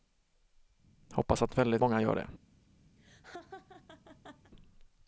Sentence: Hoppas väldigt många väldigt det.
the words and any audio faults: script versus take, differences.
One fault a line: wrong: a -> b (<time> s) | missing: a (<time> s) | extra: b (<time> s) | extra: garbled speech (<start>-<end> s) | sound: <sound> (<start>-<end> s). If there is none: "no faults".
extra: att (1.4 s)
wrong: väldigt -> gör (2.0 s)
sound: laugh (3.0-4.5 s)